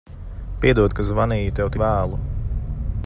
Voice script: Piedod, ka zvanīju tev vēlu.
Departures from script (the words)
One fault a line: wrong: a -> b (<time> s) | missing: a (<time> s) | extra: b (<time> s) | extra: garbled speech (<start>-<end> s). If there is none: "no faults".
no faults